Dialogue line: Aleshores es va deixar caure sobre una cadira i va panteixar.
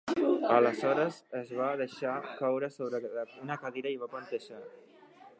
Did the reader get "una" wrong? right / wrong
right